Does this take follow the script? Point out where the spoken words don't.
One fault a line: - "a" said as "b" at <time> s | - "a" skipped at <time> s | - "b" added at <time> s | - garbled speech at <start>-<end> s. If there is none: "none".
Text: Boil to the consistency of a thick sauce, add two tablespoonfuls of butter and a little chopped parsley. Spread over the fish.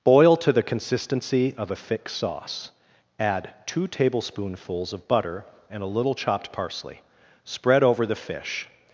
none